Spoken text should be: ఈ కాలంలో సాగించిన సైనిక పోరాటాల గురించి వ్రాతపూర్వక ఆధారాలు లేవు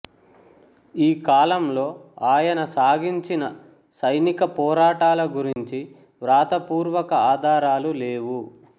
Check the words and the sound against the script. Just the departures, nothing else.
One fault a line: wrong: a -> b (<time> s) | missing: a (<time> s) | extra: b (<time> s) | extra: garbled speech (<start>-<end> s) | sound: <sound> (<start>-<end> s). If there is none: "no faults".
extra: ఆయన (2.3 s)
sound: dropout (5.5-5.6 s)